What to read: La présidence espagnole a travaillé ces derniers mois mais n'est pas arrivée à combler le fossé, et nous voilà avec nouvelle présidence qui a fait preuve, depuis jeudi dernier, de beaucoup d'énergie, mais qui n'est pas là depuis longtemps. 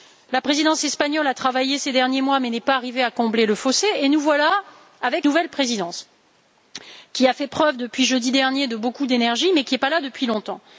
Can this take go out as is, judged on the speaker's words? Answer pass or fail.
pass